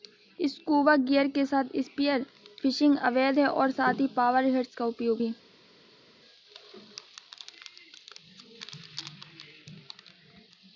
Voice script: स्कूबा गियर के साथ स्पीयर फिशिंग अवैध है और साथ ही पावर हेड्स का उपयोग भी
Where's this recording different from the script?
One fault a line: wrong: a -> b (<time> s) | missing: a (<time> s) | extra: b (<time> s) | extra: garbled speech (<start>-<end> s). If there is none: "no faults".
no faults